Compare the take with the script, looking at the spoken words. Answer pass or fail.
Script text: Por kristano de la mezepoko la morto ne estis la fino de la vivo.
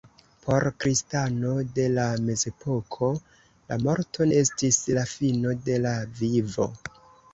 fail